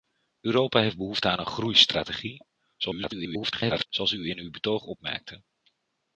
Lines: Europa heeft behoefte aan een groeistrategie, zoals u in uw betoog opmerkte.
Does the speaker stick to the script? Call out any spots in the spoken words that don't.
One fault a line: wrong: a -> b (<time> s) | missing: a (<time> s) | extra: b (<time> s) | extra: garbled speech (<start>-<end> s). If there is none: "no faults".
extra: garbled speech (2.8-3.9 s)